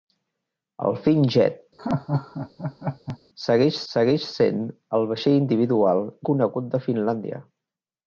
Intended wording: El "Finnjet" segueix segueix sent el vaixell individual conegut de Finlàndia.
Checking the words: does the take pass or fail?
pass